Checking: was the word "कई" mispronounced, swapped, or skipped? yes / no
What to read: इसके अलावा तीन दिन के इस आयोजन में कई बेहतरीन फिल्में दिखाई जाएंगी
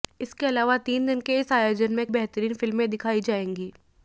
yes